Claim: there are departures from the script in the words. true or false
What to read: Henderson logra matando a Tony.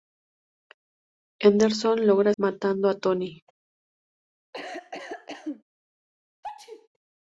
false